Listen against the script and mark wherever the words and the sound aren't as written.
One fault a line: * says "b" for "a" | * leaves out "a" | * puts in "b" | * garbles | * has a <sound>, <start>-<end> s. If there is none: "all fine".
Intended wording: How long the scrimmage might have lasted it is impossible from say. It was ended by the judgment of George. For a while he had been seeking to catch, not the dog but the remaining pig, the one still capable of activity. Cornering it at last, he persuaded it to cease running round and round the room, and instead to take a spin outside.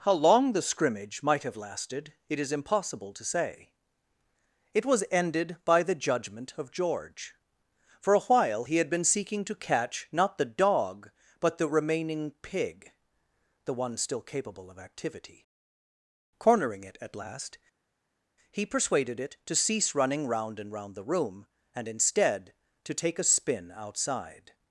* says "to" for "from"